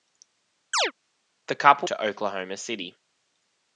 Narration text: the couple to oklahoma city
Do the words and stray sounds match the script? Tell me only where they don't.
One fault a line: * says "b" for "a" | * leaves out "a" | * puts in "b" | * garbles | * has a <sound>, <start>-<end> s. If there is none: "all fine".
* has a chirp, 0.7-0.9 s